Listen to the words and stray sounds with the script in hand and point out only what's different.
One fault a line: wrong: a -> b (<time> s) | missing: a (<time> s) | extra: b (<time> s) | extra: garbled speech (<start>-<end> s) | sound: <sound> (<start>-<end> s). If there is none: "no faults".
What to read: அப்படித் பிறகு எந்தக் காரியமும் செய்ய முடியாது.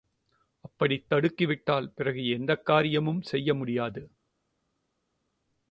extra: தடுக்கிவிட்டால் (1.1 s)